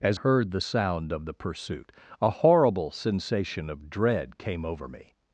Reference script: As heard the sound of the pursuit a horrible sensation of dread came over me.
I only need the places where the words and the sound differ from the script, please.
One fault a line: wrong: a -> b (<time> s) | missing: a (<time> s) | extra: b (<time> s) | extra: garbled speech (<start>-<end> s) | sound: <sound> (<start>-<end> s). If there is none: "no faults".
no faults